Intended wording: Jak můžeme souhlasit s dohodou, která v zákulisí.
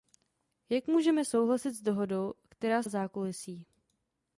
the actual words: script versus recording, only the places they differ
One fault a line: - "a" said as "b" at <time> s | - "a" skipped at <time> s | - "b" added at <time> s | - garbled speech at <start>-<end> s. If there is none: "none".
none